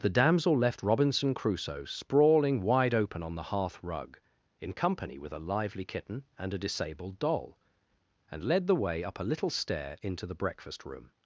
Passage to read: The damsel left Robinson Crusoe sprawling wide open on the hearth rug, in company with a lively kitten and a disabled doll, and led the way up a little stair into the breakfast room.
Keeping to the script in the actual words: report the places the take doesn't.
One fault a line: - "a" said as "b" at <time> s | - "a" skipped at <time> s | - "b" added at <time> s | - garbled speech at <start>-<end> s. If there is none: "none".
none